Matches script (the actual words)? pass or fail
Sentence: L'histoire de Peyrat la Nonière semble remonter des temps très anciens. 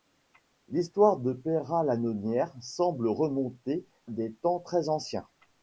pass